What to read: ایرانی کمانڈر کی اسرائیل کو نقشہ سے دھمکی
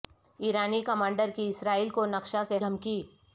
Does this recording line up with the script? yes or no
yes